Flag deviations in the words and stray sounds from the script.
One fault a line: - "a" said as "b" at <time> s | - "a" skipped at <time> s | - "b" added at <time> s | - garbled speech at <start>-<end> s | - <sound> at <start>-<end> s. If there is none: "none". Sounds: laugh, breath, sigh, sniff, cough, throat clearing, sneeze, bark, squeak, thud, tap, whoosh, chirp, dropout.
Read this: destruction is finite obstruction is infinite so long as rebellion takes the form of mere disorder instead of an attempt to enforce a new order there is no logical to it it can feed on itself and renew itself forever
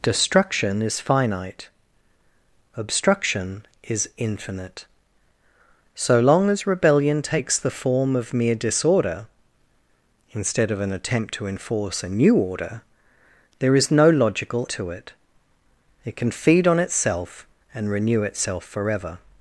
none